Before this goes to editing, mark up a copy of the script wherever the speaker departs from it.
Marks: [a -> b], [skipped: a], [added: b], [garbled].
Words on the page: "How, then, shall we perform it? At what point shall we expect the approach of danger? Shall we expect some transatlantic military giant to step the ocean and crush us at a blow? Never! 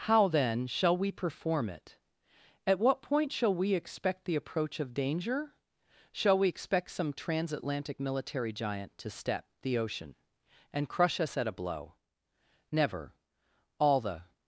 "How, then, shall we perform it? At what point shall we expect the approach of danger? Shall we expect some transatlantic military giant to step the ocean and crush us at a blow? Never! [added: All the]